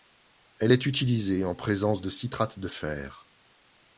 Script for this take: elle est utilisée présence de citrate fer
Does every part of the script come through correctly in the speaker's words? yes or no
no